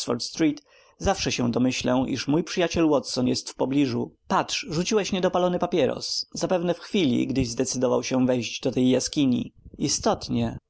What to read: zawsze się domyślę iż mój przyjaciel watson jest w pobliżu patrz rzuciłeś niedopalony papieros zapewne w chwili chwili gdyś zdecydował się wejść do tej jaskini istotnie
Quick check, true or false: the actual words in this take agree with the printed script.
false